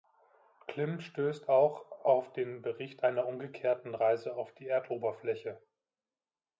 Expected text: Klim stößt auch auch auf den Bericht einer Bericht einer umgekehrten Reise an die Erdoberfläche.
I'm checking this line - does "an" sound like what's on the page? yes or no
no